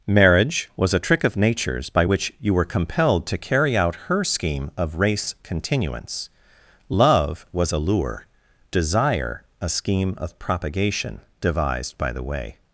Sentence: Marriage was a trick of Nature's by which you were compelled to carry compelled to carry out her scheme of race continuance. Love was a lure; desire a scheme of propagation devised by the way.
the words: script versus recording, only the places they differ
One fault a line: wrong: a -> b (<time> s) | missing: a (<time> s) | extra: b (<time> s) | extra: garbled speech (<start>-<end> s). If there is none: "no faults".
missing: compelled to carry (3.8 s)